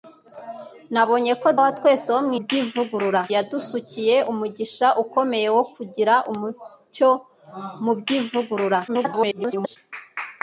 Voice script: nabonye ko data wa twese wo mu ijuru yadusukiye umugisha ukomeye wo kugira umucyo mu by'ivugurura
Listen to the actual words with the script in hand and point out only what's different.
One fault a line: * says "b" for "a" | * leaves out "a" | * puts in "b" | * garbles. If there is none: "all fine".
* leaves out "data"
* says "by'ivugurura" for "ijuru"
* garbles